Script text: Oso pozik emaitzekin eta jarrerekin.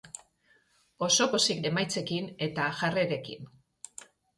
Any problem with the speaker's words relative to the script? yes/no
no